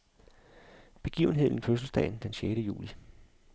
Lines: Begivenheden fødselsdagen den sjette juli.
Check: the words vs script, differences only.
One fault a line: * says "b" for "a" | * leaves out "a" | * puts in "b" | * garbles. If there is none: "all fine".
all fine